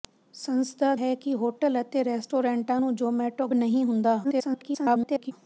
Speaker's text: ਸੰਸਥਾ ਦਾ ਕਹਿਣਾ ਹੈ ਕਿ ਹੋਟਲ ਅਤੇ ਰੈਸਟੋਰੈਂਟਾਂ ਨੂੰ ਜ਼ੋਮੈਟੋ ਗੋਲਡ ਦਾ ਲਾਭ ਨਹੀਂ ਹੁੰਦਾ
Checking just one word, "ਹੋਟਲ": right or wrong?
right